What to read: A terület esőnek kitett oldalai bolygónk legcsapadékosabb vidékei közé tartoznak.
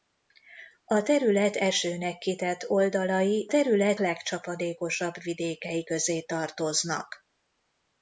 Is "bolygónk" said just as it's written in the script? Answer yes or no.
no